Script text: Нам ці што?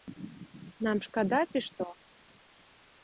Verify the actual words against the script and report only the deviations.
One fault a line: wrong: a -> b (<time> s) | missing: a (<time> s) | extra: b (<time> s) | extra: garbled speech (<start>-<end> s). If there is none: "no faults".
extra: шкада (1.1 s)